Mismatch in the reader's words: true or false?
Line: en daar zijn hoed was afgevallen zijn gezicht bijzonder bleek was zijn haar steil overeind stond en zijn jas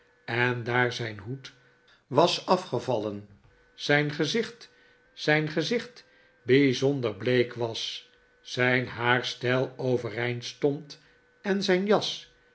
true